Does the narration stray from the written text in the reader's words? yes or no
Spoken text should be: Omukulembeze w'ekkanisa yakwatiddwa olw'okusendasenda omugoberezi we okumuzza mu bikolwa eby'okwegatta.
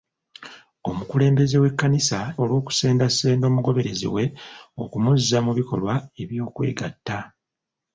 yes